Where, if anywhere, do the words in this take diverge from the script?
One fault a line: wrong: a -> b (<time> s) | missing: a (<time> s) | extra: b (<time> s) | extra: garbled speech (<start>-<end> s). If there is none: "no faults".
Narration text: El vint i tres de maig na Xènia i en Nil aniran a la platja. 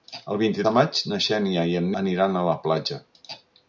missing: tres (0.6 s)
missing: Nil (1.9 s)